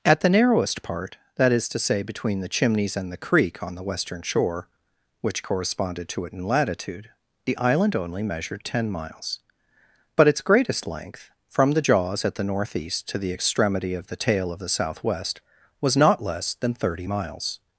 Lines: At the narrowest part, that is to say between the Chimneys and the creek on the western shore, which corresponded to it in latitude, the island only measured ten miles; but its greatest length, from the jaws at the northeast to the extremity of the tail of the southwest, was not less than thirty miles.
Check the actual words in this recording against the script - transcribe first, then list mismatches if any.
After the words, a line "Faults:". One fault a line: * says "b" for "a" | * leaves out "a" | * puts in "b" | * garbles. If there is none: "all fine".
At the narrowest part, that is to say between the Chimneys and the creek on the western shore, which corresponded to it in latitude, the island only measured ten miles; but its greatest length, from the jaws at the northeast to the extremity of the tail of the southwest, was not less than thirty miles.
Faults:
all fine